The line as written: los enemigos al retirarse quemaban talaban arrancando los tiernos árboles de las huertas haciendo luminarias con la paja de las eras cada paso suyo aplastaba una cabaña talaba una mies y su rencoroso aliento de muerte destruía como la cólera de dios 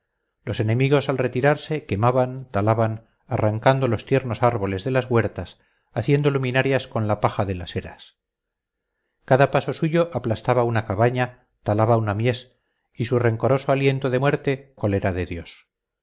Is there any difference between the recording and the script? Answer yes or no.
yes